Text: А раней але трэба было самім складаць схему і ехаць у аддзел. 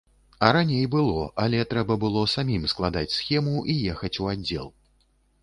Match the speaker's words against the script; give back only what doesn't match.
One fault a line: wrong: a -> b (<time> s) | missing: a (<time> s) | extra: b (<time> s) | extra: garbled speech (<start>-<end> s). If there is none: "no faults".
extra: было (0.9 s)